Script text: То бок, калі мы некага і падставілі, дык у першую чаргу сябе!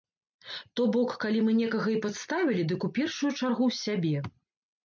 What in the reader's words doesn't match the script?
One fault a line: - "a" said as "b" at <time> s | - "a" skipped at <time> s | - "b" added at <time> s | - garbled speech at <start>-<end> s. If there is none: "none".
none